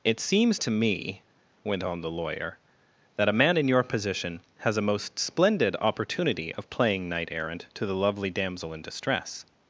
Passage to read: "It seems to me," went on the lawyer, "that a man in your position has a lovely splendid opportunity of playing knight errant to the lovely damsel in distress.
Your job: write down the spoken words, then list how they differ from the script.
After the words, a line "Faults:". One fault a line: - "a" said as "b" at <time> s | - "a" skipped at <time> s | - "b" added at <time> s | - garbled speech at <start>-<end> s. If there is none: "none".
"It seems to me," went on the lawyer, "that a man in your position has a most splendid opportunity of playing knight errant to the lovely damsel in distress.
Faults:
- "lovely" said as "most" at 4.8 s